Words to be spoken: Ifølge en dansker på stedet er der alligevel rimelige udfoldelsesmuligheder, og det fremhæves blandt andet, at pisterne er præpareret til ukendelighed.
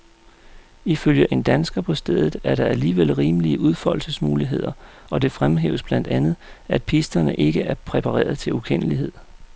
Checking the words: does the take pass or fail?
fail